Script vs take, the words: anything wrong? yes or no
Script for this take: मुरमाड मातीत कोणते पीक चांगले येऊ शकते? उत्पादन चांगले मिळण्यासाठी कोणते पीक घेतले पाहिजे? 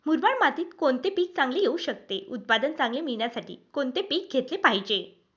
no